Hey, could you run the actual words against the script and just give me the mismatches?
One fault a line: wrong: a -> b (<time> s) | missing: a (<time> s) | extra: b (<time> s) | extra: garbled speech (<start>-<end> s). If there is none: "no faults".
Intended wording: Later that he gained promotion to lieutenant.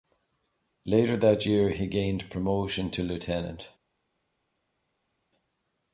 extra: year (1.4 s)